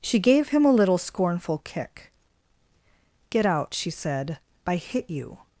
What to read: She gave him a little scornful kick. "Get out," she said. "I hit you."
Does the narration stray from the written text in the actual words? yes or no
no